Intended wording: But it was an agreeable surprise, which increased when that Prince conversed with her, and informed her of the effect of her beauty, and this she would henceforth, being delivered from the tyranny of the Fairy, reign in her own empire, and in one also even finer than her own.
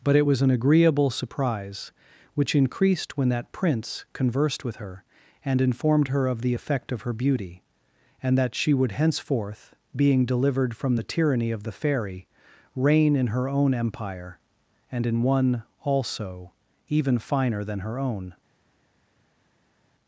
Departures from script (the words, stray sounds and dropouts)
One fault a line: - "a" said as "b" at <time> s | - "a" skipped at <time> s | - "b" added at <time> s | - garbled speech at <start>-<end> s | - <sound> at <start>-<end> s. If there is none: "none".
- "this" said as "that" at 8.4 s